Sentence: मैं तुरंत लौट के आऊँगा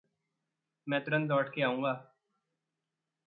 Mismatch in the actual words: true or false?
false